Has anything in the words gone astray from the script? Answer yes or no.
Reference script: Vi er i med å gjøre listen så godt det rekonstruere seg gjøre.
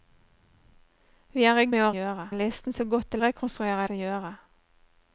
no